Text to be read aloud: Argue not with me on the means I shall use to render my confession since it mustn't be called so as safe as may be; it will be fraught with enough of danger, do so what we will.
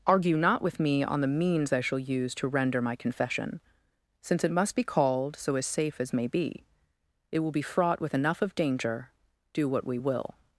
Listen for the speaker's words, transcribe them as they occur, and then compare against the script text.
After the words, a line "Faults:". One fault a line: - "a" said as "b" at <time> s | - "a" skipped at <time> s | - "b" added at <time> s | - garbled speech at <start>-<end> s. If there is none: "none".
Argue not with me on the means I shall use to render my confession since it must be called so as safe as may be; it will be fraught with enough of danger, do what we will.
Faults:
- "mustn't" said as "must" at 4.5 s
- "so" skipped at 9.7 s